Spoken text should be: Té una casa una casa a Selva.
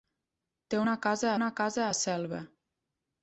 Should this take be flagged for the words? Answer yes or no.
no